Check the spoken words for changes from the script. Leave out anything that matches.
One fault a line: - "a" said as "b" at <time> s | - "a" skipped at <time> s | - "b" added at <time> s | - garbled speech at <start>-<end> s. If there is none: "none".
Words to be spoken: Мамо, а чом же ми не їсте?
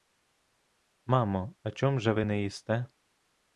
- "ми" said as "ви" at 2.1 s